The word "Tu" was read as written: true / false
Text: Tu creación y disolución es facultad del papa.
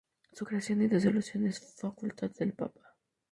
false